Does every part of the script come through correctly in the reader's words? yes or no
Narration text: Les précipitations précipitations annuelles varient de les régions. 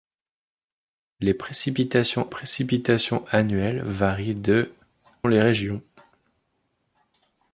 yes